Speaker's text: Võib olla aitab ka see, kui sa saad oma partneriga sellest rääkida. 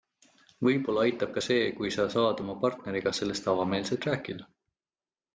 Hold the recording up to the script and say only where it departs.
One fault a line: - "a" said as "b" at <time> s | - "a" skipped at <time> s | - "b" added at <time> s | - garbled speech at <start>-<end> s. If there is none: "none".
- "avameelselt" added at 3.5 s